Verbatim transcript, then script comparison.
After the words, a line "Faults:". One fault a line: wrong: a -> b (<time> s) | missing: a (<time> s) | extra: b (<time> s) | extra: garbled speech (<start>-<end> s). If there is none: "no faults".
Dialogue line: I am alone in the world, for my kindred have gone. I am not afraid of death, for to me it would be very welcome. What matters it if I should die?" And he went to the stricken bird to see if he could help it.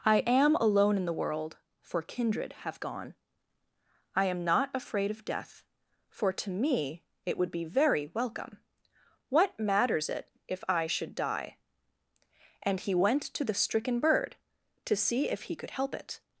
I am alone in the world, for kindred have gone. I am not afraid of death, for to me it would be very welcome. What matters it if I should die?" And he went to the stricken bird to see if he could help it.
Faults:
missing: my (2.0 s)